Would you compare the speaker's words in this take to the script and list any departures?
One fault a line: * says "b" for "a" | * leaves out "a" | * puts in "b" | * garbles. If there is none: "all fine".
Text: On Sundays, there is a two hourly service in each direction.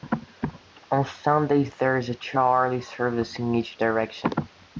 all fine